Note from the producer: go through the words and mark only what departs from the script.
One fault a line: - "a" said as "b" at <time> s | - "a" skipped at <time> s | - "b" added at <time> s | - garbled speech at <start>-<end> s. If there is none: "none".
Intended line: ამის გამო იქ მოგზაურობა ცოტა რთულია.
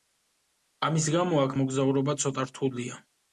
- "იქ" said as "აქ" at 1.4 s